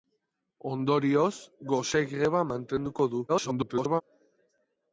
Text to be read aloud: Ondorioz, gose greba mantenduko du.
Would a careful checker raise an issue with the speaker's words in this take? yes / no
yes